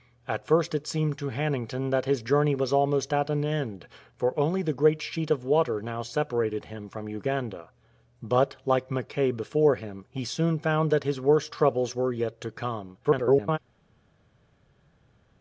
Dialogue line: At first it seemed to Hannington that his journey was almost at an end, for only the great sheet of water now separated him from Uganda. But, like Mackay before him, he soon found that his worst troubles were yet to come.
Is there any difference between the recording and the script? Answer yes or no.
yes